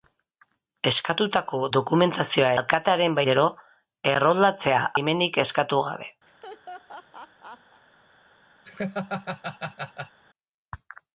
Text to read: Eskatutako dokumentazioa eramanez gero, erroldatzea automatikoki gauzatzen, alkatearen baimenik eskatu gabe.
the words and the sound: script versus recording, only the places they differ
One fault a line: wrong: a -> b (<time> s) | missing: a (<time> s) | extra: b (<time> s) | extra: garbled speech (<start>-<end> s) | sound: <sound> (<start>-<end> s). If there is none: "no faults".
wrong: eramanez -> alkatearen (2.6 s)
missing: automatikoki gauzatzen alkatearen (4.8 s)
sound: laugh (6.3-7.8 s)
sound: laugh (8.6-10.2 s)